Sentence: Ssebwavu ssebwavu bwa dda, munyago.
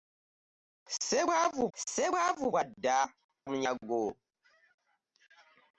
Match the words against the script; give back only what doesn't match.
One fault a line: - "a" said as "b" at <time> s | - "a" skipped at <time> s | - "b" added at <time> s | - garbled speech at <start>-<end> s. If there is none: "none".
none